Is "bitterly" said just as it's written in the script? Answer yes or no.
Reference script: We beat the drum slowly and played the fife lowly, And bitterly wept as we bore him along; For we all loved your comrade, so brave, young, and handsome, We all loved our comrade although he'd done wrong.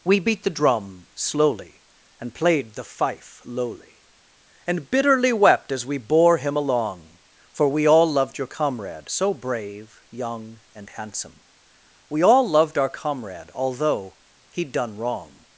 yes